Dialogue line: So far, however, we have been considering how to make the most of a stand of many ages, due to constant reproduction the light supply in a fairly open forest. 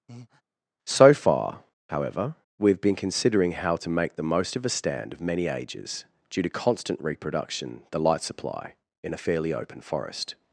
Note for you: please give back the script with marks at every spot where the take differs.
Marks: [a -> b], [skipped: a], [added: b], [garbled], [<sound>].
[breath] So far, however, we have been considering how to make the most of a stand of many ages, due to constant reproduction the light supply in a fairly open forest.